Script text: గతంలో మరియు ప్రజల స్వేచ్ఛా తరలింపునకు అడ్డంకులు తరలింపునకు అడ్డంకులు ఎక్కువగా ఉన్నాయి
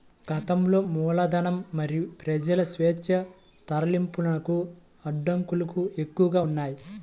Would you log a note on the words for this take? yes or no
yes